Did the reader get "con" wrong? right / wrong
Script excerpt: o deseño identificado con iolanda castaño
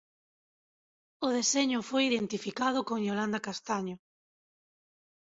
right